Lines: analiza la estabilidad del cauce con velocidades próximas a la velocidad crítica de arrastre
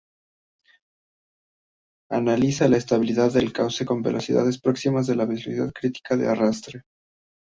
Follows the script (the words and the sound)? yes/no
yes